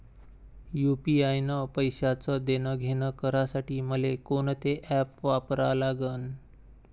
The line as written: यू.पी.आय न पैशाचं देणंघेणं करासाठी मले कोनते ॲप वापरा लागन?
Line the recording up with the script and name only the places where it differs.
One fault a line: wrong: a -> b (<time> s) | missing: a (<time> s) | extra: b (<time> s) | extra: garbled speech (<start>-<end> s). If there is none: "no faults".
no faults